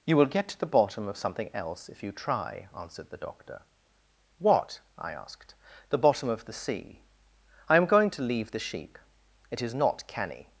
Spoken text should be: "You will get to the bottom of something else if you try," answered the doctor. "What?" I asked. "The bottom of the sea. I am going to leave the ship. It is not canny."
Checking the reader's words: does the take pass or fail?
fail